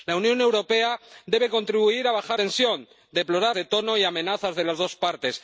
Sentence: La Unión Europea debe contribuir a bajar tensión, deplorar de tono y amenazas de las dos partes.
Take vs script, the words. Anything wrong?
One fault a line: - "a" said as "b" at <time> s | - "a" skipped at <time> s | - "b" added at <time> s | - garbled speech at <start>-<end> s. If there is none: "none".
none